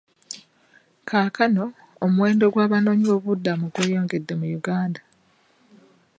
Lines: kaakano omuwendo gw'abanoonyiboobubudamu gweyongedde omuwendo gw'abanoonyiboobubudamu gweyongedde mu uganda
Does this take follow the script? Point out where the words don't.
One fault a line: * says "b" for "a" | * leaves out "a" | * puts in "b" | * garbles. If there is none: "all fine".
* leaves out "omuwendo gw'abanoonyiboobubudamu gweyongedde"